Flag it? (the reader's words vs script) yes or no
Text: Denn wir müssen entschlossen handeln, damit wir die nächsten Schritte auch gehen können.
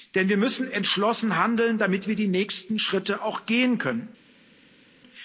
no